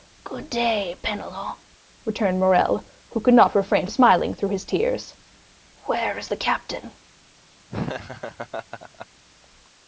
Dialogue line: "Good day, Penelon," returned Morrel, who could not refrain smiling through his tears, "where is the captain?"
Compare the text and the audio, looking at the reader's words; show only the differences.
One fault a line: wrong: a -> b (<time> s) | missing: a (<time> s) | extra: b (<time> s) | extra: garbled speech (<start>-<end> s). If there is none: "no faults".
no faults